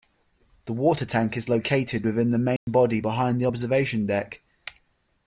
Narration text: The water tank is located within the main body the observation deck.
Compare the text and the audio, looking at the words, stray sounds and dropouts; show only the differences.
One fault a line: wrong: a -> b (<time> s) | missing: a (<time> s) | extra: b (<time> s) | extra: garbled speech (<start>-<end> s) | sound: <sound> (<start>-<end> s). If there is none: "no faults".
sound: dropout (2.6-2.7 s)
extra: behind (3.0 s)